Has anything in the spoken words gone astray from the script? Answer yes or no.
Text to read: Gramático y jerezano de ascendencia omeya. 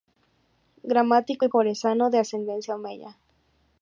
no